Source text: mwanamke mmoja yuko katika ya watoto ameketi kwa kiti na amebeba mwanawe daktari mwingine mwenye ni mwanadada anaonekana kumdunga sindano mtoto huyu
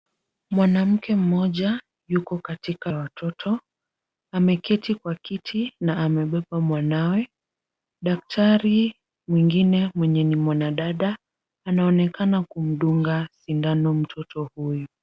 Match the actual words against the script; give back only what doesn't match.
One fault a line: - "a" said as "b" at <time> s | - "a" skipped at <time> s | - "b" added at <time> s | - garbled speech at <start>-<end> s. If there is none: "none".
none